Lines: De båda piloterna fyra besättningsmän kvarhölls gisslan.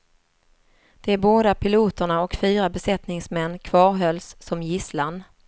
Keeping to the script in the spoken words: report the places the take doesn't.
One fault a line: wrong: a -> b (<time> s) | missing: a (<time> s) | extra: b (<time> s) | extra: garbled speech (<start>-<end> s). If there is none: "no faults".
extra: och (2.2 s)
extra: som (4.4 s)